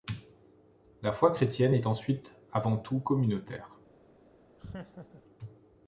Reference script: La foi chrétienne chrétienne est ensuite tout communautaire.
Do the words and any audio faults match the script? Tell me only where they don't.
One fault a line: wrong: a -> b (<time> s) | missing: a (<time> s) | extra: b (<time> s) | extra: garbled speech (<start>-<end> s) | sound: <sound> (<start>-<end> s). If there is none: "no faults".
missing: chrétienne (1.8 s)
extra: avant (2.5 s)
sound: laugh (4.6-5.2 s)